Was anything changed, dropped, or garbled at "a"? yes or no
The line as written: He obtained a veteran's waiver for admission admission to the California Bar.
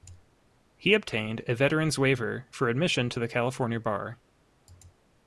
no